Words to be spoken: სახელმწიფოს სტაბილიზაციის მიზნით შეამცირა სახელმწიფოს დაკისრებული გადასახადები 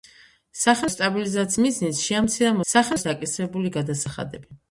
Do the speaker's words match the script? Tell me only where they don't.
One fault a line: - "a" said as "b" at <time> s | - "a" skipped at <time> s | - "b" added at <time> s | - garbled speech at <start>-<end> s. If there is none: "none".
none